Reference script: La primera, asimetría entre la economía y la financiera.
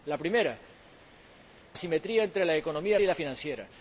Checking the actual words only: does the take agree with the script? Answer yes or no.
yes